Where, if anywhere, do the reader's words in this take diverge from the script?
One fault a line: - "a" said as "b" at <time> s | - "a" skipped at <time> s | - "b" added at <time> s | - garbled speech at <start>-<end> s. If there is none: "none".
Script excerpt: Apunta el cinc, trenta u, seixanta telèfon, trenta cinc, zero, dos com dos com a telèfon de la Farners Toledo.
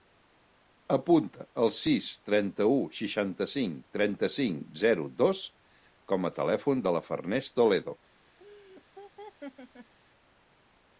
- "cinc" said as "sis" at 1.8 s
- "telèfon" said as "cinc" at 3.5 s
- "dos com" skipped at 6.3 s